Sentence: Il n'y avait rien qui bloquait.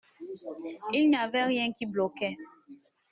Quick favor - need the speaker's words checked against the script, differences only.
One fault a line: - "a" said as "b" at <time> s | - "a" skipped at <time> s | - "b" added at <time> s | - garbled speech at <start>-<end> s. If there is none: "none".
none